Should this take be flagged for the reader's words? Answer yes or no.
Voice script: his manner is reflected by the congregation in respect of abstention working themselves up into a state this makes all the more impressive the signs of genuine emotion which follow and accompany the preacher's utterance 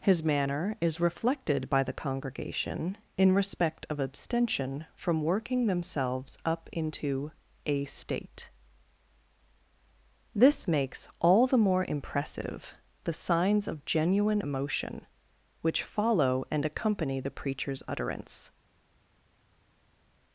yes